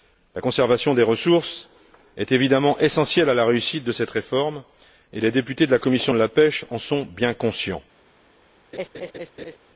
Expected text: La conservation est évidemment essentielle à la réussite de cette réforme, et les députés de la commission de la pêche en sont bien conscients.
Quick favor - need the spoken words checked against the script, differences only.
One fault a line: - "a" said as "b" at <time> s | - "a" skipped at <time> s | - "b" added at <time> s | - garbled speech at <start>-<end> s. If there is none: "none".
- "des ressources" added at 0.9 s